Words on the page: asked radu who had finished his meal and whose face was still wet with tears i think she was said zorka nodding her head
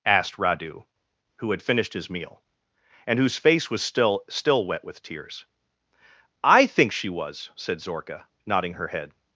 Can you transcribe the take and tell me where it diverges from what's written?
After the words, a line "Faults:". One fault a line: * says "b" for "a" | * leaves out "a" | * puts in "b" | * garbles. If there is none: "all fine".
asked radu who had finished his meal and whose face was still still wet with tears i think she was said zorka nodding her head
Faults:
* puts in "still"